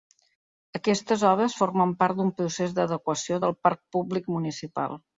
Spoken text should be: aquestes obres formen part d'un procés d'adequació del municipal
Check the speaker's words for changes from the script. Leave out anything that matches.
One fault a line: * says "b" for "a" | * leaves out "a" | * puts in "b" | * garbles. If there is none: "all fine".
* puts in "parc públic"